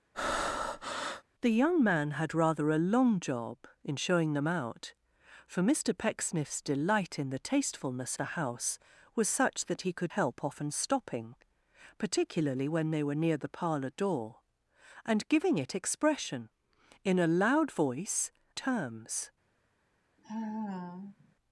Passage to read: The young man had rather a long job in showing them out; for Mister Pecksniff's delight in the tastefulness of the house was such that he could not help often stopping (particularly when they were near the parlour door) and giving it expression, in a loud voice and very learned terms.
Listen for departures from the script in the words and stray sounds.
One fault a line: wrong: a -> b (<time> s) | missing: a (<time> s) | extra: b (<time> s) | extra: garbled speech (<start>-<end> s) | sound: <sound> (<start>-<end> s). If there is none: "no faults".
sound: breath (0.1-1.2 s)
missing: of (8.2 s)
missing: not (10.1 s)
missing: and very learned (18.3 s)
sound: sigh (20.2-21.4 s)